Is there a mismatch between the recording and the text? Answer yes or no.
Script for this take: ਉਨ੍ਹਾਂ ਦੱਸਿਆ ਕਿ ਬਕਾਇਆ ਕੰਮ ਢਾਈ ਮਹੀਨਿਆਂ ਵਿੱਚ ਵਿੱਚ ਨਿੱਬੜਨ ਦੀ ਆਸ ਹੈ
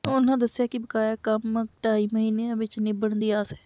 yes